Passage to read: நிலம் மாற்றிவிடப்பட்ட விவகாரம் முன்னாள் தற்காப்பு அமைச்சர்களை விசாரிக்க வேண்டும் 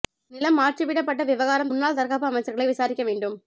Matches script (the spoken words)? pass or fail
pass